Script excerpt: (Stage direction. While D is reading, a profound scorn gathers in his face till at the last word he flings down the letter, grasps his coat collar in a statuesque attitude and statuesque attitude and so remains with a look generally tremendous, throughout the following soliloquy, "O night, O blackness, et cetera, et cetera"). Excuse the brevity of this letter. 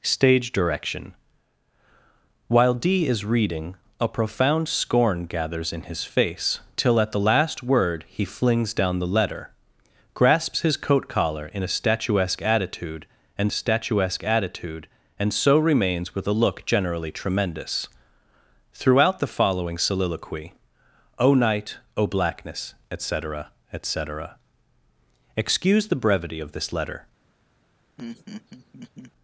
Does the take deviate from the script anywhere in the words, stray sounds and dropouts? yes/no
yes